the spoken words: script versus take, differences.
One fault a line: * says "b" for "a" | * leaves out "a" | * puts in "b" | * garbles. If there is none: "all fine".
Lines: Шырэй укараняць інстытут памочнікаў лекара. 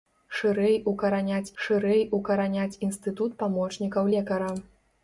* puts in "шырэй укараняць"